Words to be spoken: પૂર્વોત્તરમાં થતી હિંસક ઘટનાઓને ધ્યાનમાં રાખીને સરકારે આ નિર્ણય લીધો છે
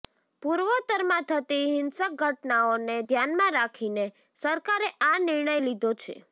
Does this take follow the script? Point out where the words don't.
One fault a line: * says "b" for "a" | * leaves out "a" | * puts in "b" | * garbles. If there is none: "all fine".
all fine